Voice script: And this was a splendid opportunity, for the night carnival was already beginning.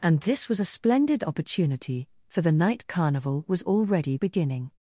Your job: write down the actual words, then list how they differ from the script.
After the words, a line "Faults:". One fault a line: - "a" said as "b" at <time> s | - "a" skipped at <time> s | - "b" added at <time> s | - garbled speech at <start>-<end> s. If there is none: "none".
And this was a splendid opportunity, for the night carnival was already beginning.
Faults:
none